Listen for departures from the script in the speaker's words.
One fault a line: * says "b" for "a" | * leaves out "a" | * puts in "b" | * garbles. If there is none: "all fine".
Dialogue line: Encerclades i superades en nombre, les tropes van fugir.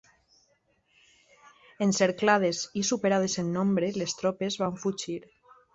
all fine